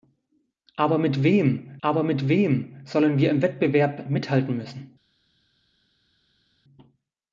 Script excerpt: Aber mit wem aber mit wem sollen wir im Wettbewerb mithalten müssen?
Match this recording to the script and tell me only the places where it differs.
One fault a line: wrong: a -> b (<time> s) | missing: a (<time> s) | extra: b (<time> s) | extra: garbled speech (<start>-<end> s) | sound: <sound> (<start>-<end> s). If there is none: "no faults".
no faults